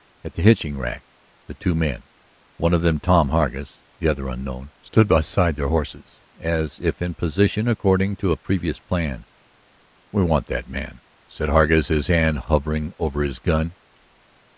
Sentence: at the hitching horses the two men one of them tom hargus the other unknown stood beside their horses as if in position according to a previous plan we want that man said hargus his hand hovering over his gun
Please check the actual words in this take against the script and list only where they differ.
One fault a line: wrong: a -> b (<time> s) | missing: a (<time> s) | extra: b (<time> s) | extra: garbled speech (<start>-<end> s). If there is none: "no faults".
wrong: horses -> rack (0.8 s)